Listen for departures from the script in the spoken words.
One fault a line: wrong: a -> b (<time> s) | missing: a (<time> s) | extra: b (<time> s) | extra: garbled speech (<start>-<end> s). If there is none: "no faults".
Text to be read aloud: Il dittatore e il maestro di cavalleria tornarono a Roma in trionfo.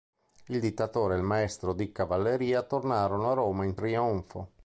no faults